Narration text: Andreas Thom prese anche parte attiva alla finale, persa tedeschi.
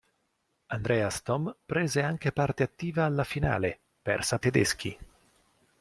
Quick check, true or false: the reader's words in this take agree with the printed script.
true